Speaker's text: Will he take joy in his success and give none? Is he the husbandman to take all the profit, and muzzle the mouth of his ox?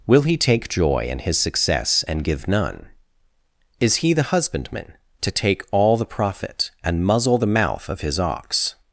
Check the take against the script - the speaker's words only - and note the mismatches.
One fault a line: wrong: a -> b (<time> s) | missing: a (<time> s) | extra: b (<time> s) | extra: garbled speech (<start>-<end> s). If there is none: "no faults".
no faults